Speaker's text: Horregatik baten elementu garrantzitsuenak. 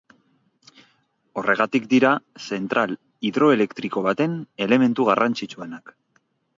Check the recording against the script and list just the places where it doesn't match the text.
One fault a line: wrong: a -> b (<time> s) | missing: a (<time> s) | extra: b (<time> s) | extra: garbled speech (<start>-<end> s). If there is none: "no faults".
extra: dira zentral hidroelektriko (1.9 s)